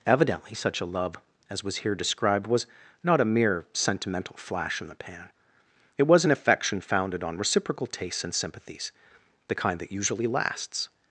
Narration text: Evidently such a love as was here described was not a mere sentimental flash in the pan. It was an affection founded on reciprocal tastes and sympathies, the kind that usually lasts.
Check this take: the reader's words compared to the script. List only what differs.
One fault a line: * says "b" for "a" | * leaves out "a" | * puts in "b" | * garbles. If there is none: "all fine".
all fine